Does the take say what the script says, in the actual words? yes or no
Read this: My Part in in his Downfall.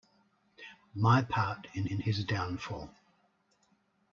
yes